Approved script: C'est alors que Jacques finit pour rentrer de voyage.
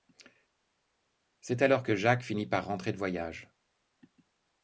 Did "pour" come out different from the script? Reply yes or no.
yes